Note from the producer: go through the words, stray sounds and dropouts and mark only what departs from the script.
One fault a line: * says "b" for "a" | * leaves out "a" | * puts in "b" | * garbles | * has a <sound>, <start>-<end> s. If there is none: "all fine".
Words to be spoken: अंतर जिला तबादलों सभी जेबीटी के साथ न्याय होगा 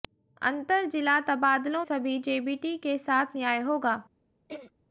* has a throat clearing, 4.5-4.7 s